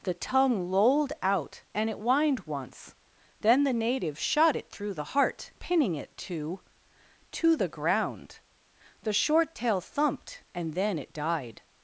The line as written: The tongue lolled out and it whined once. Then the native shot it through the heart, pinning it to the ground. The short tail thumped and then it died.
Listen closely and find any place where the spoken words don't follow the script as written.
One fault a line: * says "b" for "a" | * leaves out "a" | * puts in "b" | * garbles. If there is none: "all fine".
* puts in "to"